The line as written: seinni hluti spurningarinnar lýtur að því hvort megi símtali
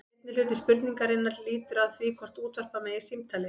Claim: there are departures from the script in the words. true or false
true